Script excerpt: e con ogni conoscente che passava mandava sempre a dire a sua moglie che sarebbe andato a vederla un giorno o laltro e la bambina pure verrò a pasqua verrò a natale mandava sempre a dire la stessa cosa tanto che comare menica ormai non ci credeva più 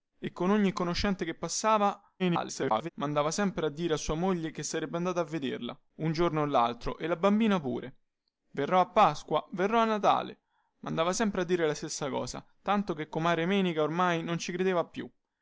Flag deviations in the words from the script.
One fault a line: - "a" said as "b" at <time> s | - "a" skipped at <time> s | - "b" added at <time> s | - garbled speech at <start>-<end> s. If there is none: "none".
- garbled speech at 2.2-2.9 s